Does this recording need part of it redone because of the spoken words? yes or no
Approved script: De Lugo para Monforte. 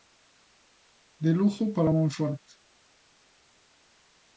no